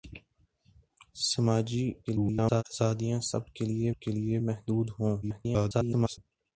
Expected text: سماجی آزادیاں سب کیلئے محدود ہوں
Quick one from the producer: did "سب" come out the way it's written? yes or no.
yes